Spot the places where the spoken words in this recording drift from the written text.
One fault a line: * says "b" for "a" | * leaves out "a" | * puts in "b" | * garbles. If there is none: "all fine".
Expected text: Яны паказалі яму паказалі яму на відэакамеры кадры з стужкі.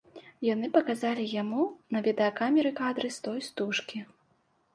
* leaves out "паказалі яму"
* puts in "той"